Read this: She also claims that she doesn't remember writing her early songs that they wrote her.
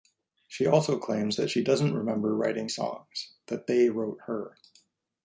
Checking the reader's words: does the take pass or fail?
fail